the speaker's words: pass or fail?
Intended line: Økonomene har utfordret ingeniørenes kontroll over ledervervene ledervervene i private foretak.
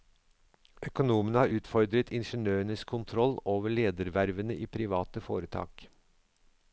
fail